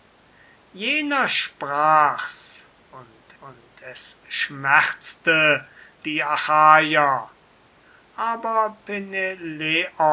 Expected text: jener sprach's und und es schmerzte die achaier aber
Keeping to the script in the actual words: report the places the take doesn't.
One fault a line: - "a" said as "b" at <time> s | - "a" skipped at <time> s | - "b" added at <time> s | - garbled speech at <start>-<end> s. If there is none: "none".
none